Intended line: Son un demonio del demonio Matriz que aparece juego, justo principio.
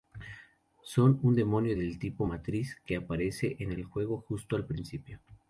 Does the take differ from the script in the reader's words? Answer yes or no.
yes